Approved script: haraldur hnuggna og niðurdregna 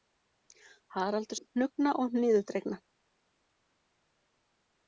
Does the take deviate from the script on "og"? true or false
false